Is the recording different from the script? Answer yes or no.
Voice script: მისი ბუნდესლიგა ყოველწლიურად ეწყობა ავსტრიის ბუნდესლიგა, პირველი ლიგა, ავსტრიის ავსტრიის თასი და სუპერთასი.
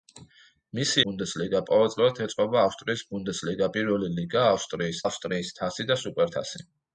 no